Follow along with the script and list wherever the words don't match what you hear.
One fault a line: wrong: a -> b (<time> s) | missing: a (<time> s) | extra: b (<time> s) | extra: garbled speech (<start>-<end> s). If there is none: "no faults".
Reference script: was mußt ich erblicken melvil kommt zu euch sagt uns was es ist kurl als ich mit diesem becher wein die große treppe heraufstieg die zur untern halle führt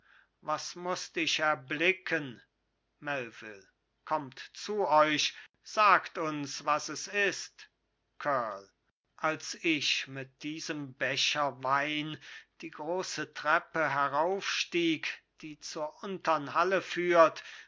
no faults